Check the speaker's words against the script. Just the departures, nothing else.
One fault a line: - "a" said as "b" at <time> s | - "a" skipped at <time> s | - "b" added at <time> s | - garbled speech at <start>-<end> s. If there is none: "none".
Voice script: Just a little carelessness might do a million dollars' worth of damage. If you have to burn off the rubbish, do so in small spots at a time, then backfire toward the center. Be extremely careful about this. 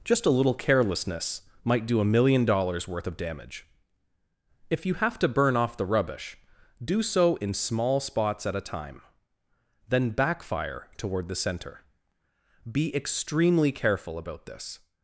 none